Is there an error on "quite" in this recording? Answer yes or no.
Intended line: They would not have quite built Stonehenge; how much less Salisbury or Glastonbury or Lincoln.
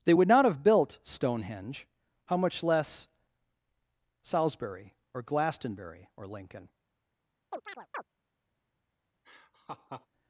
yes